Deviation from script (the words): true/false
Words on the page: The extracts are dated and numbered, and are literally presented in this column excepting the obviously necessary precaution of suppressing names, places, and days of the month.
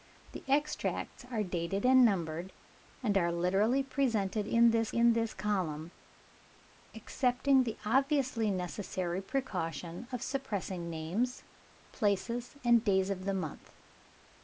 true